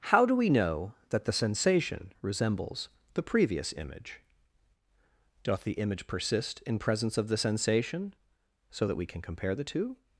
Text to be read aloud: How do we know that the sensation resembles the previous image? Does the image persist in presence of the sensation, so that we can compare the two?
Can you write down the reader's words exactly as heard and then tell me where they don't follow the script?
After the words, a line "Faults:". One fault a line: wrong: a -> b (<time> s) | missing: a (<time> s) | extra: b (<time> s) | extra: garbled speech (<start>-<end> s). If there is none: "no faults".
How do we know that the sensation resembles the previous image? Doth the image persist in presence of the sensation, so that we can compare the two?
Faults:
wrong: Does -> Doth (5.4 s)